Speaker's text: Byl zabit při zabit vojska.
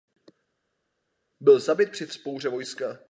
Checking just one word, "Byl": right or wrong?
right